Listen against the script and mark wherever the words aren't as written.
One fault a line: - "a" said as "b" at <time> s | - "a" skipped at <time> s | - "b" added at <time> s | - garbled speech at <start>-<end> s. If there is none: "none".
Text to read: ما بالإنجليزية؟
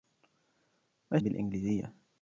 none